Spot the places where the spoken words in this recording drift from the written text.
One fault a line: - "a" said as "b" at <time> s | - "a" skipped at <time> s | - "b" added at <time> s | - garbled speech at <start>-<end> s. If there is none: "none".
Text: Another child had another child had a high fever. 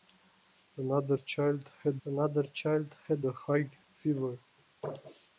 none